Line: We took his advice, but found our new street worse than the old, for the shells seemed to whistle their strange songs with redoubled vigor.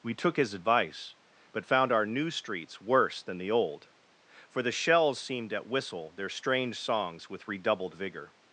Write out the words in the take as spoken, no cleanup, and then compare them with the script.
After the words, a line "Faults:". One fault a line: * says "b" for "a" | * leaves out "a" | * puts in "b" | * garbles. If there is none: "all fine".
We took his advice, but found our new streets worse than the old, for the shells seemed at whistle their strange songs with redoubled vigor.
Faults:
* says "streets" for "street"
* says "at" for "to"